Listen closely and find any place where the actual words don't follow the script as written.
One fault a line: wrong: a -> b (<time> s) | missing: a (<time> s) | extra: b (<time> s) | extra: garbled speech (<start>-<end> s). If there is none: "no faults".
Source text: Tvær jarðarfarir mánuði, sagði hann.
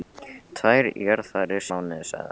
no faults